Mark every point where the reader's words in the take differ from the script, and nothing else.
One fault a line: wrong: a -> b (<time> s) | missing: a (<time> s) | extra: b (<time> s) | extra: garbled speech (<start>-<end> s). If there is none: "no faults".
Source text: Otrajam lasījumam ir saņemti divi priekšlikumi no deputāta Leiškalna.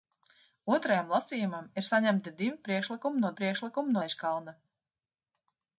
wrong: deputāta -> priekšlikumi (3.4 s)